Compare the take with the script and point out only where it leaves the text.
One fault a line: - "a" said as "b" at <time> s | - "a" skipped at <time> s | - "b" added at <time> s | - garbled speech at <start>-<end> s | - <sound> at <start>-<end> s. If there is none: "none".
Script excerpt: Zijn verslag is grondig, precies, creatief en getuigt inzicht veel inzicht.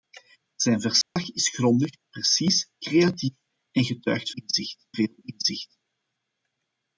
- dropout at 1.0-1.2 s